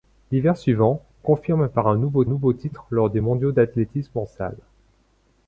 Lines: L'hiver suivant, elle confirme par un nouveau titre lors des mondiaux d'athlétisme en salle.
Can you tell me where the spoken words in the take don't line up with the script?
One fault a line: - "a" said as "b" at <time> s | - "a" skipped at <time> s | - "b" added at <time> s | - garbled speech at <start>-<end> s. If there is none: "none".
- "elle" skipped at 1.0 s
- "nouveau" added at 2.2 s